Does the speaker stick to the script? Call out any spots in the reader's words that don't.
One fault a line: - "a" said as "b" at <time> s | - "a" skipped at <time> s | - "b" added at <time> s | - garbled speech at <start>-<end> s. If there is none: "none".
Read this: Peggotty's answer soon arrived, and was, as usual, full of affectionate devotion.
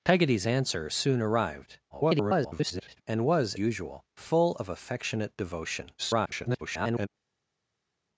- garbled speech at 1.9-3.0 s
- "as" skipped at 3.6 s
- garbled speech at 6.0-7.1 s